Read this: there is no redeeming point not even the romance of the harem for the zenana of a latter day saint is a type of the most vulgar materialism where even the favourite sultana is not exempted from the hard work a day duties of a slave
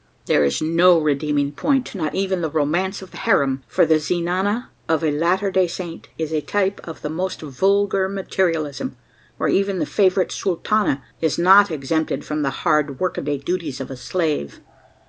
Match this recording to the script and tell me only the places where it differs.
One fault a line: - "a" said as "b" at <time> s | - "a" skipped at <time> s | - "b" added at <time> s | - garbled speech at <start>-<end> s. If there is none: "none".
none